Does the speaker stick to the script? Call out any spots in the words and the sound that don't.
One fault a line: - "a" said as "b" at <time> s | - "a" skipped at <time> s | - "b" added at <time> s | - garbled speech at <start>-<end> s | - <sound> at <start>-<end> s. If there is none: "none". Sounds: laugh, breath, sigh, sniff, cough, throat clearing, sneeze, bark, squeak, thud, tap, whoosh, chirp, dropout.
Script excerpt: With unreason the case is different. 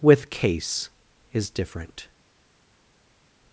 - "unreason the" skipped at 0.3 s